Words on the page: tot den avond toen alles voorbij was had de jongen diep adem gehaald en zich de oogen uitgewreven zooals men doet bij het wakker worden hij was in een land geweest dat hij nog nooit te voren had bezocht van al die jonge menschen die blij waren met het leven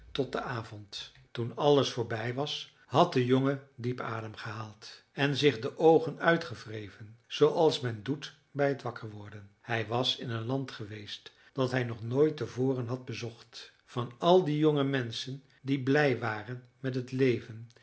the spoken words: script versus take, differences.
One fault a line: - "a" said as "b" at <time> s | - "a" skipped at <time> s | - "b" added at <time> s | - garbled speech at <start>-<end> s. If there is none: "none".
none